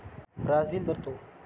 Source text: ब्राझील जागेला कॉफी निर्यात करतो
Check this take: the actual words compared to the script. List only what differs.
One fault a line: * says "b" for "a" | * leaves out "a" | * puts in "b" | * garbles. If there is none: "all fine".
* leaves out "जागेला कॉफी निर्यात"